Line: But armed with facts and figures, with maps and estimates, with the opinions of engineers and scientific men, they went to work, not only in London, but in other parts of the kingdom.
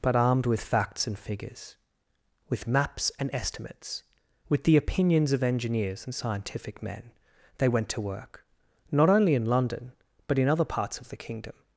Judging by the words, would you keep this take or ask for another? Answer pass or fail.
pass